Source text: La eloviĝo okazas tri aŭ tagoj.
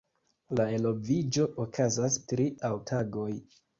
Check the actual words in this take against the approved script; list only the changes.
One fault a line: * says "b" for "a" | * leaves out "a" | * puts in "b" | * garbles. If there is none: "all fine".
all fine